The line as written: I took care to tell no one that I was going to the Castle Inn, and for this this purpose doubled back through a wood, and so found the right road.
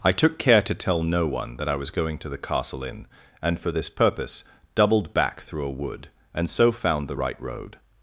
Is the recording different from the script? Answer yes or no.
yes